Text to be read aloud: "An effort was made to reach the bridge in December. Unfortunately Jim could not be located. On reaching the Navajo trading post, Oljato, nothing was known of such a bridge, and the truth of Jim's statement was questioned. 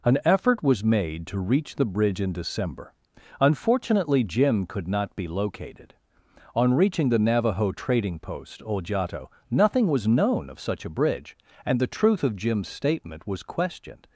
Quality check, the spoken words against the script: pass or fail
pass